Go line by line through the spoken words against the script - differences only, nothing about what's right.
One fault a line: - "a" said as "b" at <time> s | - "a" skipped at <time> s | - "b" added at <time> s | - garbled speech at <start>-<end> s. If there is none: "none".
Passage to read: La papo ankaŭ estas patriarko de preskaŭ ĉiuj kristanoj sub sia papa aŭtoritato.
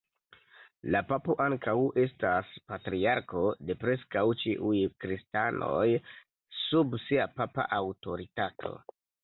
none